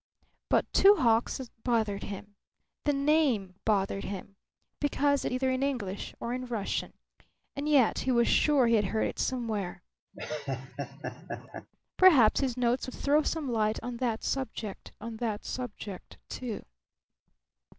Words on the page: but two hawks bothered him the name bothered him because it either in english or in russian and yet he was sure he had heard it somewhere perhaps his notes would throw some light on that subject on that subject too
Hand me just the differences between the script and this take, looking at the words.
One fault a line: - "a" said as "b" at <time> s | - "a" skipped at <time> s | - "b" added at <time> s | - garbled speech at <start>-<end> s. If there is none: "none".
none